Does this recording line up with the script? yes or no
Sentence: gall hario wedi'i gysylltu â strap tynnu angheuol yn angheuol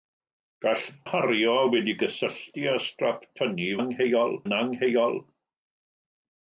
yes